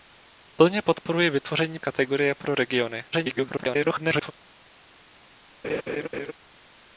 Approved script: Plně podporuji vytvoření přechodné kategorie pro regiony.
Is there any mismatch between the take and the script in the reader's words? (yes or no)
yes